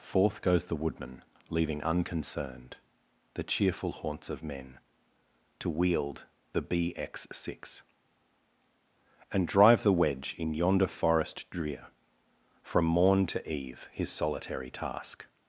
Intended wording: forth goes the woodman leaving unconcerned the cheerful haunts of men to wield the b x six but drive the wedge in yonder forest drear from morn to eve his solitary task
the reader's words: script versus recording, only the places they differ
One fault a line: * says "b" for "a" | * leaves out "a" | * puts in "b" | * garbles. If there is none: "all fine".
* says "and" for "but"